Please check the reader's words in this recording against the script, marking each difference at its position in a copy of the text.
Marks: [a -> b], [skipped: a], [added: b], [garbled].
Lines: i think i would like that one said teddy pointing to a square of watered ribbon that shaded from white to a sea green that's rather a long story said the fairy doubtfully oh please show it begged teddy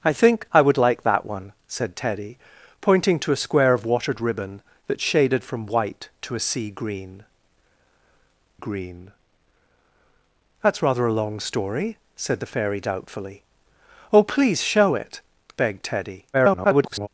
i think i would like that one said teddy pointing to a square of watered ribbon that shaded from white to a sea green [added: green] that's rather a long story said the fairy doubtfully oh please show it begged teddy [garbled]